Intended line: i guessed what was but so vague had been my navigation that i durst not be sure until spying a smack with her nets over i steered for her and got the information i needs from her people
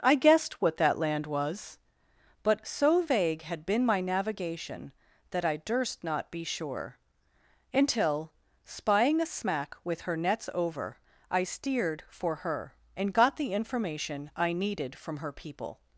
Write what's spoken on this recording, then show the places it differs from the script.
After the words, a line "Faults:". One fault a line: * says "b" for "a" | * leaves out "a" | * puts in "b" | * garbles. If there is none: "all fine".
i guessed what that land was but so vague had been my navigation that i durst not be sure until spying a smack with her nets over i steered for her and got the information i needed from her people
Faults:
* puts in "that land"
* says "needed" for "needs"